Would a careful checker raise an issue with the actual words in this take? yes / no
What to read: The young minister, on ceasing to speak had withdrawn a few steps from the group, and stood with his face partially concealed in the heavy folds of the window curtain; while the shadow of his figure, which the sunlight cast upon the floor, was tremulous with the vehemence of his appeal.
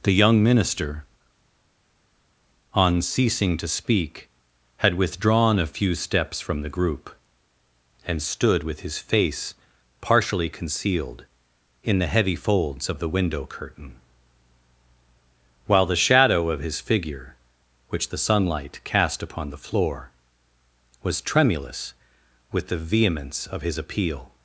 no